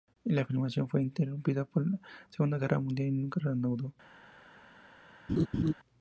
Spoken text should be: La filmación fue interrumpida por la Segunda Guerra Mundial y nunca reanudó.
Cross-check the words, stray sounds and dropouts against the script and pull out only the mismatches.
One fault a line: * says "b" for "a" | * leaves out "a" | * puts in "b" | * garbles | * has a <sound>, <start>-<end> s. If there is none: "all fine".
* has a laugh, 5.3-5.7 s